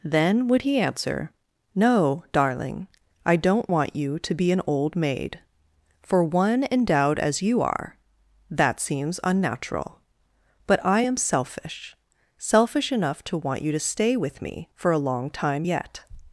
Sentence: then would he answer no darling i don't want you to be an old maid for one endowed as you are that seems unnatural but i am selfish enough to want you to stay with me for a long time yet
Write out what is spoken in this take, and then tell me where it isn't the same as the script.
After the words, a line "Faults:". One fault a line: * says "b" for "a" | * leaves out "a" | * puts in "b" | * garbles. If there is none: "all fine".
then would he answer no darling i don't want you to be an old maid for one endowed as you are that seems unnatural but i am selfish selfish enough to want you to stay with me for a long time yet
Faults:
* puts in "selfish"